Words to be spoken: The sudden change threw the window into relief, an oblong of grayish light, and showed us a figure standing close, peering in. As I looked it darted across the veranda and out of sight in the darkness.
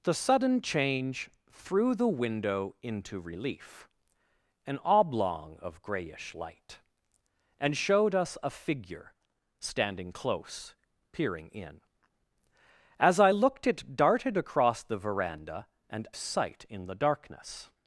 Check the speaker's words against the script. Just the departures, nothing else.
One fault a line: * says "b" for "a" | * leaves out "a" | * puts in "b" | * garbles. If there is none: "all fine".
* leaves out "out of"